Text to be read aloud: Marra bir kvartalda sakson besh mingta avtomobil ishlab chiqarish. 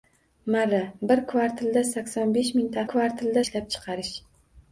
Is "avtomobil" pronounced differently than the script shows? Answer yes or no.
yes